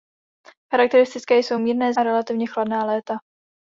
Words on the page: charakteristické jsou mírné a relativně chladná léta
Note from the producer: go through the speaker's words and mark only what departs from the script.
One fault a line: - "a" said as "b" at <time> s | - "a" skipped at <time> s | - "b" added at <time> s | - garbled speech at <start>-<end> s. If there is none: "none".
none